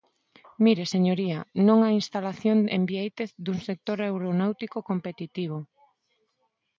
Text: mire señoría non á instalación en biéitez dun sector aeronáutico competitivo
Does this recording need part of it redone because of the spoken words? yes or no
no